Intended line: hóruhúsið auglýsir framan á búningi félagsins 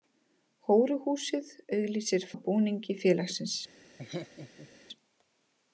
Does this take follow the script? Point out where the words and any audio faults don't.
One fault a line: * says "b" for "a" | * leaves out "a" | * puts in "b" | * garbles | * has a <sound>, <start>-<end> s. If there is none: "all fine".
* leaves out "framan"
* has a laugh, 4.0-4.7 s